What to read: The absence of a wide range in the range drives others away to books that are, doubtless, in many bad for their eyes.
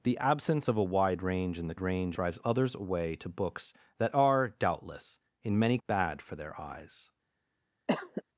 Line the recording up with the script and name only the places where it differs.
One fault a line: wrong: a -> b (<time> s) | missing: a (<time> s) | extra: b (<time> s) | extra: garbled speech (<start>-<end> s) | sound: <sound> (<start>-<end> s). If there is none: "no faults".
sound: cough (7.9-8.2 s)